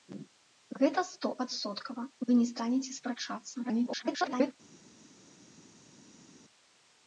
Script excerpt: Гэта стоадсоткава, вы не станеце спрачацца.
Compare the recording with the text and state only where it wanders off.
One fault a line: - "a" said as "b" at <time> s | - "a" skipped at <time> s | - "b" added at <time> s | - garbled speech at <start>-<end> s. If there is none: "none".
- garbled speech at 3.6-4.5 s